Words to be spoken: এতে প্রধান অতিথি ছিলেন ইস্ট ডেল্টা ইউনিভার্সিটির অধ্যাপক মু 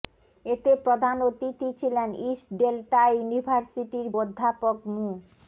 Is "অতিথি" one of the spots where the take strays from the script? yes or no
no